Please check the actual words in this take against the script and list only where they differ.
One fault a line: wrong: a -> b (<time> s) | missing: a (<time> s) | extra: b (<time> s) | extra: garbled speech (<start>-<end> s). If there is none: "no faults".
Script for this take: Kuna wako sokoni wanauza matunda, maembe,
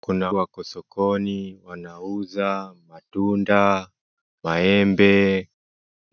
no faults